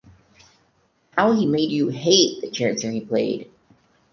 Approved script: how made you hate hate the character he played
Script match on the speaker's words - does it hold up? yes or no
no